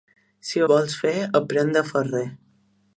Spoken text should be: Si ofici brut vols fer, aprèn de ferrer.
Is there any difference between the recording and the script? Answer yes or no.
yes